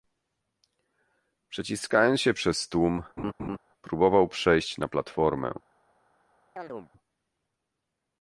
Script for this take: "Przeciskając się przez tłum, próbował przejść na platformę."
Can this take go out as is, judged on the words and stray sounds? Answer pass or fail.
fail